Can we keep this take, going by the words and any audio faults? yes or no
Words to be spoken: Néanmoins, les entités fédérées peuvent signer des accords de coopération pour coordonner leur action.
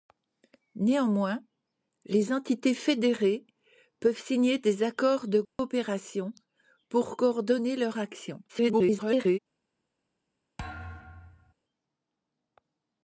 no